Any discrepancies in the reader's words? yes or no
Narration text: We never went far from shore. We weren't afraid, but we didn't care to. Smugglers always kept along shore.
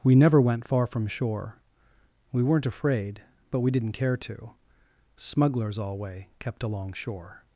yes